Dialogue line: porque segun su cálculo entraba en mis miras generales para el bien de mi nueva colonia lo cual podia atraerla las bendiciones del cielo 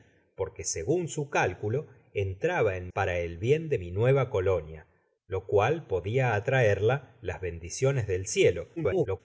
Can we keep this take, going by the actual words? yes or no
no